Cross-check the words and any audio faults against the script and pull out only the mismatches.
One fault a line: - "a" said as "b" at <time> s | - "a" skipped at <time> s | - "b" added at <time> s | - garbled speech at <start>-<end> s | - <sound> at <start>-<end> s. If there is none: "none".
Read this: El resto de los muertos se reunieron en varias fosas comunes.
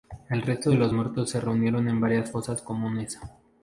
none